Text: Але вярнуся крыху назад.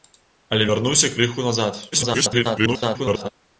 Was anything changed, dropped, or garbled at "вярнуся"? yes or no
no